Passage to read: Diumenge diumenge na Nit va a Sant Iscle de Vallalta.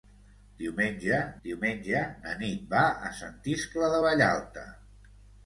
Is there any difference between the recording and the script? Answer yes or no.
no